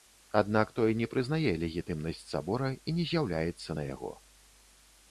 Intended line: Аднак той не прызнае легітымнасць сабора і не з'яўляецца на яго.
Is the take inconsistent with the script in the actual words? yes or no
no